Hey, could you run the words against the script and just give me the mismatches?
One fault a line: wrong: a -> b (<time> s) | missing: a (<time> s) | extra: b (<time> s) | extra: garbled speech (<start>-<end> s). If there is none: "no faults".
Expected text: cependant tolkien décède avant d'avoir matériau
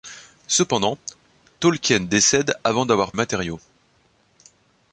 no faults